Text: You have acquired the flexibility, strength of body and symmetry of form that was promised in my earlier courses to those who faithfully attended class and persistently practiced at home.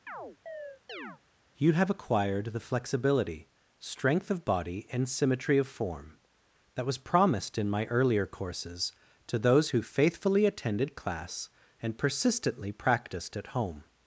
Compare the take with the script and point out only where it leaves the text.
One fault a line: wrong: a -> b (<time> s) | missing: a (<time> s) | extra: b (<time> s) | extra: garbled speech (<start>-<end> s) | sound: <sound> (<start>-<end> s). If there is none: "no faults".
sound: chirp (0.1-1.2 s)